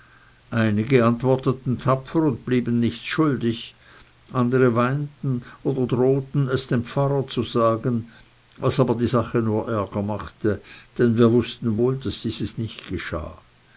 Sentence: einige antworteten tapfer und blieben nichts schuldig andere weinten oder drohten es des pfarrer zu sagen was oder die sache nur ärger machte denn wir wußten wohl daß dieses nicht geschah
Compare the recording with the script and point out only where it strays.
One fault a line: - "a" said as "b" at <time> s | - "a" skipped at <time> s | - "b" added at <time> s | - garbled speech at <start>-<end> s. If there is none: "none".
- "des" said as "dem" at 6.7 s
- "oder" said as "aber" at 8.8 s